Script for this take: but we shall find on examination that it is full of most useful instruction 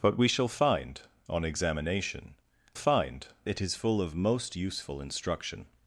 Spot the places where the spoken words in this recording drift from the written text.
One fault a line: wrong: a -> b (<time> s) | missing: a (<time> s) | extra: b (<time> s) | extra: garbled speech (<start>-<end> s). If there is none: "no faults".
wrong: that -> find (2.7 s)